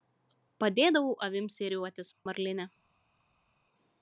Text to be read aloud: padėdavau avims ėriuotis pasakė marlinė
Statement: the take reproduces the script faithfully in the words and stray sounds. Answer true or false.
false